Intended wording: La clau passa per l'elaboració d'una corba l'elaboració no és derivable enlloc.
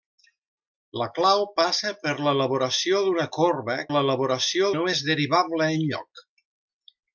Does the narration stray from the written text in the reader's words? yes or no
no